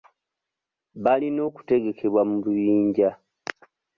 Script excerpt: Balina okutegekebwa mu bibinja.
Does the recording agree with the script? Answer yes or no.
yes